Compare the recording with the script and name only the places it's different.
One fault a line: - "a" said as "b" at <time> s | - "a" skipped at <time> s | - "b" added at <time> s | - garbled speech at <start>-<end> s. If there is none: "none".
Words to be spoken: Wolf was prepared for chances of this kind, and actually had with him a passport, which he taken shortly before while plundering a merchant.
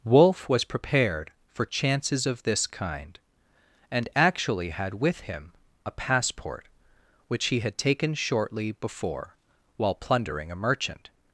- "had" added at 7.6 s